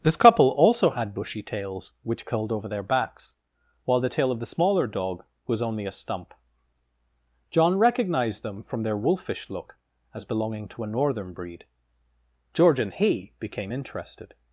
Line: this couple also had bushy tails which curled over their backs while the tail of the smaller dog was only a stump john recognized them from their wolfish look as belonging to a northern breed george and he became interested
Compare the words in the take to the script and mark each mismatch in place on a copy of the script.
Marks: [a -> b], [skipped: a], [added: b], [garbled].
this couple also had bushy tails which curled over their backs while the tail of the smaller dog was only a stump john recognized them from their wolfish look as belonging to a northern breed george and he became interested